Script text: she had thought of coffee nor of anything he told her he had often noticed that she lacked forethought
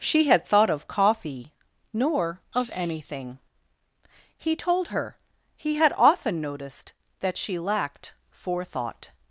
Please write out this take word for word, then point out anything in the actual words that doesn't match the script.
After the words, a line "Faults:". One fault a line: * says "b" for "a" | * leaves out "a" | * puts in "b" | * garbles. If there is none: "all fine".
she had thought of coffee nor of anything he told her he had often noticed that she lacked forethought
Faults:
all fine